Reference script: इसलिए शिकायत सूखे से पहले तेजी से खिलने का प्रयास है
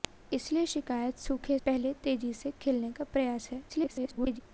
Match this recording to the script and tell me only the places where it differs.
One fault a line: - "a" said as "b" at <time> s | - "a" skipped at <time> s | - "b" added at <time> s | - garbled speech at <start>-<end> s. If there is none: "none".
- "से" skipped at 1.6 s
- garbled speech at 3.7-4.4 s